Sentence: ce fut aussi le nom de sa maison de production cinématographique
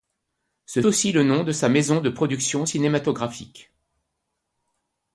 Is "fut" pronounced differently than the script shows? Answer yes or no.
yes